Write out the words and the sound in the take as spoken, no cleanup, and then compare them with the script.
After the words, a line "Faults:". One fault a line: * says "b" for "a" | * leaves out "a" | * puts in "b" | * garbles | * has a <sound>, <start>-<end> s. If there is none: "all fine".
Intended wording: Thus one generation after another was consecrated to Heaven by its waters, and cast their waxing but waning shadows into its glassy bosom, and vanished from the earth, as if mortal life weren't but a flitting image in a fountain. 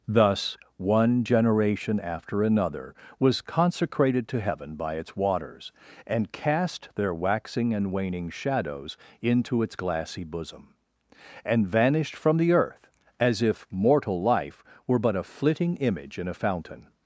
Thus one generation after another was consecrated to Heaven by its waters, and cast their waxing and waning shadows into its glassy bosom, and vanished from the earth, as if mortal life were but a flitting image in a fountain.
Faults:
* says "and" for "but"
* says "were" for "weren't"